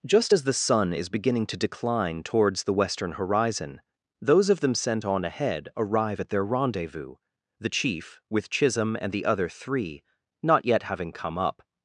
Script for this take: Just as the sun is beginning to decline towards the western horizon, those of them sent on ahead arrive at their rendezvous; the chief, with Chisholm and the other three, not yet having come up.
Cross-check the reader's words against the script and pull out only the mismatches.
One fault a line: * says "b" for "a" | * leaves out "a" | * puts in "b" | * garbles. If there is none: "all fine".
all fine